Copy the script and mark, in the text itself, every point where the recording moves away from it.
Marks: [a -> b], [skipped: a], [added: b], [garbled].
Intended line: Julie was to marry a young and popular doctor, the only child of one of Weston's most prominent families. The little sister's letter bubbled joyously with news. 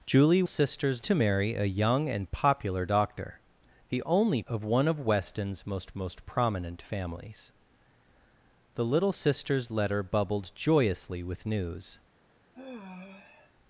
Julie [was -> sister's] to marry a young and popular doctor, the only [skipped: child] of one of Weston's most [added: most] prominent families. The little sister's letter bubbled joyously with news.